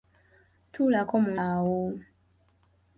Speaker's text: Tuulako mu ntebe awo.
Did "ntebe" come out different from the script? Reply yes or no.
yes